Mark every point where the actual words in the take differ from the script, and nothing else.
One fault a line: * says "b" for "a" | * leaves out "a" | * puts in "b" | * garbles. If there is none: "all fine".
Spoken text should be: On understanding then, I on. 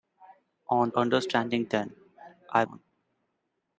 all fine